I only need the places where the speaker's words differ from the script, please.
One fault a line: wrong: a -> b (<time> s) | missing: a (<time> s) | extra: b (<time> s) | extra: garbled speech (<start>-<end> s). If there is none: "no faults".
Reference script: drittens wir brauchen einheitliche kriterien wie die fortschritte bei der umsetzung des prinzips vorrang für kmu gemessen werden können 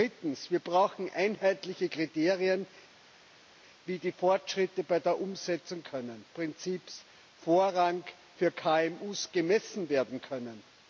wrong: des -> können (5.8 s)